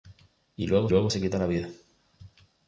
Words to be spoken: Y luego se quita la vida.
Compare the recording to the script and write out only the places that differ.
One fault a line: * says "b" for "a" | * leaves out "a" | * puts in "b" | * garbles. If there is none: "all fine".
* puts in "luego"